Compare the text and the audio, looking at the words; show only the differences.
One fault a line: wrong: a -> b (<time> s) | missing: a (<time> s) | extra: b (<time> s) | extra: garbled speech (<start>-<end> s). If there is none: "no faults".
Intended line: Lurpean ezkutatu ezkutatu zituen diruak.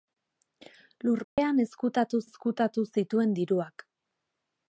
no faults